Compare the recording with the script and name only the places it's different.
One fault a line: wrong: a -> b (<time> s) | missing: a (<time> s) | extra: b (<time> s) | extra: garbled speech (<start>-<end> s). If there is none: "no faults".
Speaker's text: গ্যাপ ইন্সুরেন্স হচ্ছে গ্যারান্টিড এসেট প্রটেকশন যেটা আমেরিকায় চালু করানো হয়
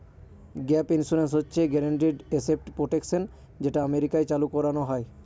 no faults